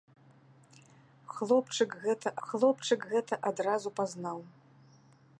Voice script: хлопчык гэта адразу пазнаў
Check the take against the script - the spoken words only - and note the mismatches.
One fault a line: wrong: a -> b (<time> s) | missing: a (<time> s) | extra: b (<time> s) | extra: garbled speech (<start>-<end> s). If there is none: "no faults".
extra: хлопчык гэта (2.5 s)